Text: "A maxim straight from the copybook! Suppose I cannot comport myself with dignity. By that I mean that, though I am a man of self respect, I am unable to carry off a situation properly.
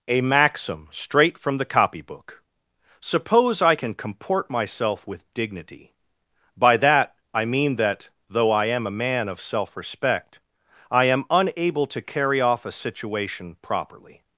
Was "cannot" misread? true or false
true